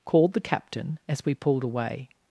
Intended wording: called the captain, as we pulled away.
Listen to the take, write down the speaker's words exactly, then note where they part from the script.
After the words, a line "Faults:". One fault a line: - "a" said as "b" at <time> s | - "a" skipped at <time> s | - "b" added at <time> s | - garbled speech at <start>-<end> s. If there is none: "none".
called the captain, as we pulled away.
Faults:
none